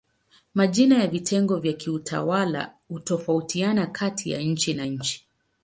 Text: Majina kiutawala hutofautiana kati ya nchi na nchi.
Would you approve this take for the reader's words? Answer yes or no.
no